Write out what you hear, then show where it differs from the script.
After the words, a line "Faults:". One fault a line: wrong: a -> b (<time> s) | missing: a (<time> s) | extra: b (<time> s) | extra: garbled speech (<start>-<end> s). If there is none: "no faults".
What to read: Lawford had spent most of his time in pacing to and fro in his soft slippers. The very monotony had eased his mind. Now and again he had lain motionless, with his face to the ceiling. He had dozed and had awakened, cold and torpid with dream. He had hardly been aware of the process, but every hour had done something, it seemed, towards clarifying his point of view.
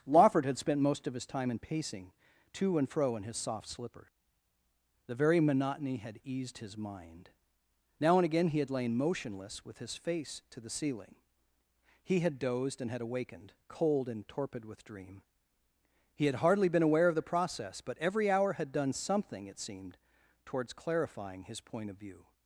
Lawford had spent most of his time in pacing to and fro in his soft slipper. The very monotony had eased his mind. Now and again he had lain motionless, with his face to the ceiling. He had dozed and had awakened, cold and torpid with dream. He had hardly been aware of the process, but every hour had done something, it seemed, towards clarifying his point of view.
Faults:
wrong: slippers -> slipper (3.7 s)